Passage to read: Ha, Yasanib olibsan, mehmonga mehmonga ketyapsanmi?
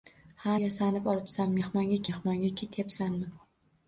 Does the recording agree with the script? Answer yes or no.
yes